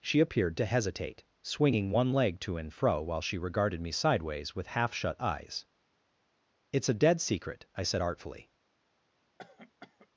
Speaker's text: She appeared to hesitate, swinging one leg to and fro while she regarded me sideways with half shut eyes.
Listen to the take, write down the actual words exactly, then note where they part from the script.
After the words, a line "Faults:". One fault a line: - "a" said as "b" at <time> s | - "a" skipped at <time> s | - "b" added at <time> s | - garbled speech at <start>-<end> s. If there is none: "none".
She appeared to hesitate, swinging one leg to and fro while she regarded me sideways with half shut eyes. "It's a dead secret," I said artfully
Faults:
- "It's a dead secret I said artfully" added at 6.7 s